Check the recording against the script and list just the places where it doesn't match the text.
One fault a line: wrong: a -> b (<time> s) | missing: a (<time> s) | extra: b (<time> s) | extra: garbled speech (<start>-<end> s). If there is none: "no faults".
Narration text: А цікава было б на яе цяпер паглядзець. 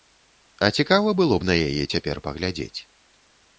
no faults